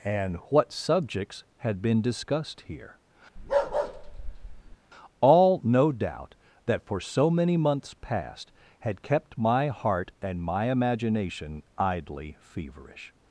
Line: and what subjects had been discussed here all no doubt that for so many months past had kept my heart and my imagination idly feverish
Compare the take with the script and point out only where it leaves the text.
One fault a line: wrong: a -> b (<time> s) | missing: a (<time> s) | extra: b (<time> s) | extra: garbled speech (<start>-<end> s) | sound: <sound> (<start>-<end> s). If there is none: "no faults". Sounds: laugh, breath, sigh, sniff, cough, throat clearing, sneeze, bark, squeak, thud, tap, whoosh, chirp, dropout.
sound: bark (3.4-4.8 s)